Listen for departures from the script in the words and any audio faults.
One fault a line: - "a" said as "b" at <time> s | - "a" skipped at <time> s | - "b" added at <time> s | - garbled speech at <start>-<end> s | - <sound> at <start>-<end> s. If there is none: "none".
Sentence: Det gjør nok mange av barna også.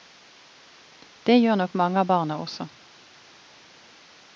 none